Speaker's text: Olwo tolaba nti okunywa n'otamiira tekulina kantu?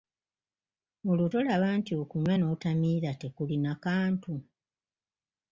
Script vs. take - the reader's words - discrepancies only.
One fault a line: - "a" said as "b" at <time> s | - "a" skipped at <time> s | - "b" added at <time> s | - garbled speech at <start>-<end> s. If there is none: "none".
none